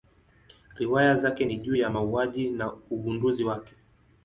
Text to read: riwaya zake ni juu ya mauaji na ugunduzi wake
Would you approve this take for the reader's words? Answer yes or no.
yes